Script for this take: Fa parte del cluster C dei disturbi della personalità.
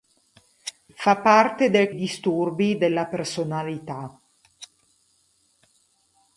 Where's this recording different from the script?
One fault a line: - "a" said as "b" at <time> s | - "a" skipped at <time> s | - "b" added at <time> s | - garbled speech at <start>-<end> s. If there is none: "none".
- "cluster C dei" skipped at 1.9 s